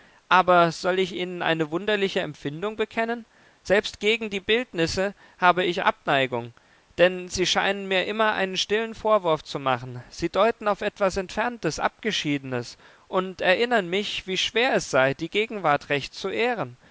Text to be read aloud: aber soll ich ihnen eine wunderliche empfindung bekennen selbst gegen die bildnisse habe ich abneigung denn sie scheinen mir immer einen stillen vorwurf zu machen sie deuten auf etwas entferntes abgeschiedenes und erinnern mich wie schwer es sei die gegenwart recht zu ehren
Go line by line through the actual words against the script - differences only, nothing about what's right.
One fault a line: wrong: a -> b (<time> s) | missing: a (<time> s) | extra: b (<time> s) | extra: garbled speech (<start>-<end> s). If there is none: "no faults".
no faults